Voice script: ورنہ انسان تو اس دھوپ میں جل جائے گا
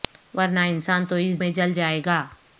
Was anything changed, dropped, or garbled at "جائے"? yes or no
no